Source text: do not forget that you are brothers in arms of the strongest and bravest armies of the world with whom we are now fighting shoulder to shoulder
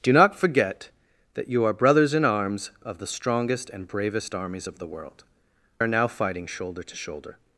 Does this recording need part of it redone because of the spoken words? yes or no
yes